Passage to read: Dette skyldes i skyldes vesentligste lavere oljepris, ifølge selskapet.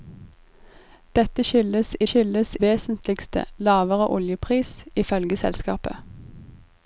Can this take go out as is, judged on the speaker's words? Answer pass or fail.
pass